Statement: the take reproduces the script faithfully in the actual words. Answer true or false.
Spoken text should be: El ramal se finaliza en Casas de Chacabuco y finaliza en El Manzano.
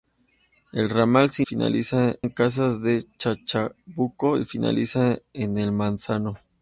true